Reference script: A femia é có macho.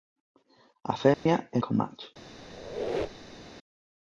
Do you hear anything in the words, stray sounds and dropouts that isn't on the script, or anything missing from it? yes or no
yes